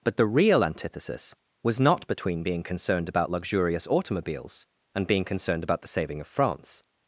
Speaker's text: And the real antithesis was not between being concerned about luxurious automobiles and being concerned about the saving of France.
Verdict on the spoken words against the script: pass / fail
fail